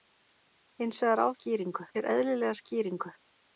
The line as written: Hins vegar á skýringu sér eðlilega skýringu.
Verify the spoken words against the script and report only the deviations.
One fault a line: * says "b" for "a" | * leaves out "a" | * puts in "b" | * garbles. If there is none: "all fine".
all fine